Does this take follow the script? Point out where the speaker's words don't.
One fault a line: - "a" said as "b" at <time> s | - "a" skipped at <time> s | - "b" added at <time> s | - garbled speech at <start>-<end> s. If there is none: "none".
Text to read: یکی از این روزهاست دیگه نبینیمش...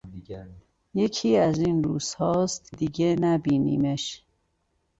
none